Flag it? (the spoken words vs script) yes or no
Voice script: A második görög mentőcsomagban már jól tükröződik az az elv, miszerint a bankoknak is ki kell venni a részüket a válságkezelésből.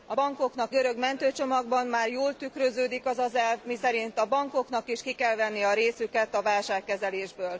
yes